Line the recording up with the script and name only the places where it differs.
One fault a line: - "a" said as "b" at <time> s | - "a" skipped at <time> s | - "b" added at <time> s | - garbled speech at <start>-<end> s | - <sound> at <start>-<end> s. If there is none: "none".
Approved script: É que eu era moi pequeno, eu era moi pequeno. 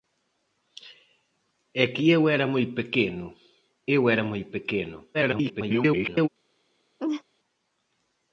- garbled speech at 5.1-6.3 s
- laugh at 7.0-7.2 s